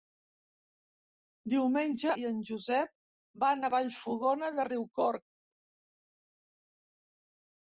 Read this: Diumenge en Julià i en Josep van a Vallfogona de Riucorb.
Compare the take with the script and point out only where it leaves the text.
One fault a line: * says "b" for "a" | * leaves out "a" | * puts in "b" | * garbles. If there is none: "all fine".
* leaves out "en Julià"